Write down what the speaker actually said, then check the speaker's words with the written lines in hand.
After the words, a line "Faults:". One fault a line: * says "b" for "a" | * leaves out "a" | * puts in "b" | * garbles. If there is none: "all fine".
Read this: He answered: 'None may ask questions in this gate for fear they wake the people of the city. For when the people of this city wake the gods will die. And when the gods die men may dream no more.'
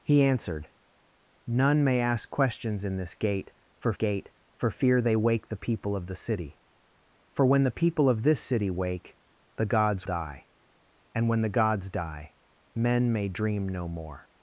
He answered: 'None may ask questions in this gate for gate for fear they wake the people of the city. For when the people of this city wake the gods die. And when the gods die men may dream no more.'
Faults:
* puts in "gate for"
* leaves out "will"